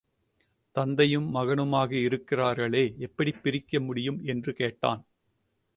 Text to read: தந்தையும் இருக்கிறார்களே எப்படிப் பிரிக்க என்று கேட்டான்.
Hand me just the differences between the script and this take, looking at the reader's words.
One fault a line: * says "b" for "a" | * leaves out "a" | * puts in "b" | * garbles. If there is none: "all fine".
* puts in "மகனுமாக"
* puts in "முடியும்"